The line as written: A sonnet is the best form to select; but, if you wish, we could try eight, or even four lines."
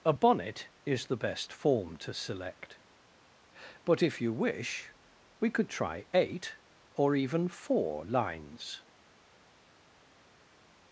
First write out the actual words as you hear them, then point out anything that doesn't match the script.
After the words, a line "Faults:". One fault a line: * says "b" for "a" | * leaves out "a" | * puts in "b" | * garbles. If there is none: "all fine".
A bonnet is the best form to select; but, if you wish, we could try eight, or even four lines."
Faults:
* says "bonnet" for "sonnet"